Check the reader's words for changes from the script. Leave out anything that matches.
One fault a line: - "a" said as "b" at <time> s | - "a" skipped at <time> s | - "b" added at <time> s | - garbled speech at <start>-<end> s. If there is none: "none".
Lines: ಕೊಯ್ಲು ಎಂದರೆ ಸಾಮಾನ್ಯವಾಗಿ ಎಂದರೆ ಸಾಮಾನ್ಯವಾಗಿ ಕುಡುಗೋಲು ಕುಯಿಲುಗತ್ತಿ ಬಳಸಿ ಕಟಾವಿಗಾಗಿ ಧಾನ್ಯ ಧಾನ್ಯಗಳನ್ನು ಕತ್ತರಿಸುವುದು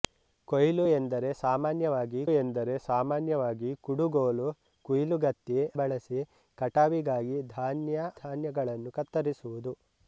none